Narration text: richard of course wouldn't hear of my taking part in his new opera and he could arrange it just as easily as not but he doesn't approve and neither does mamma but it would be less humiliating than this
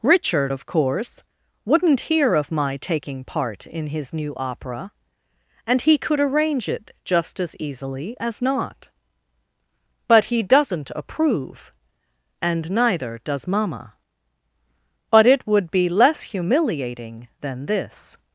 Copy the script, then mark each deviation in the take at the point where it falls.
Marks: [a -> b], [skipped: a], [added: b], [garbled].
richard of course wouldn't hear of my taking part in his new opera and he could arrange it just as easily as not but he doesn't approve and neither does mamma but it would be less humiliating than this